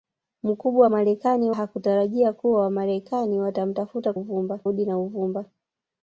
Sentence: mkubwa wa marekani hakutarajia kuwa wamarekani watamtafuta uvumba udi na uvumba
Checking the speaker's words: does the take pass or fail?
pass